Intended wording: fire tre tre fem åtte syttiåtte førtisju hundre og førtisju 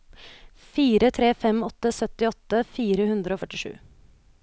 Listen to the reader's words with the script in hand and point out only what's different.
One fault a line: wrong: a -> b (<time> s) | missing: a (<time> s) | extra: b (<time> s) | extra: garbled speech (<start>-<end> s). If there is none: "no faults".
missing: tre (1.3 s)
wrong: førtisju -> fire (2.8 s)